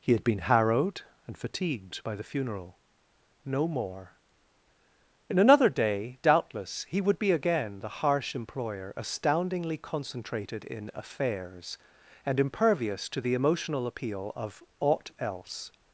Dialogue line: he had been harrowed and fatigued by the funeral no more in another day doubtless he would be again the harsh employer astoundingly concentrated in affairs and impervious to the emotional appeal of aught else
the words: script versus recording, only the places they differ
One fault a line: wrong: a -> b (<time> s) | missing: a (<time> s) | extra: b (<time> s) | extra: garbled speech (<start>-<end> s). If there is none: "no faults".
no faults